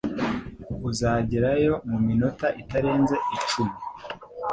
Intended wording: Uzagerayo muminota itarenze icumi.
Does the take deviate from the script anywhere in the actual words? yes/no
no